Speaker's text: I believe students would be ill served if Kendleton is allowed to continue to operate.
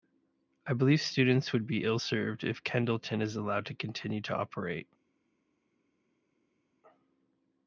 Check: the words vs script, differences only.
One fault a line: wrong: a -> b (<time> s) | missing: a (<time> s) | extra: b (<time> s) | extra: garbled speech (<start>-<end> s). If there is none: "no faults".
no faults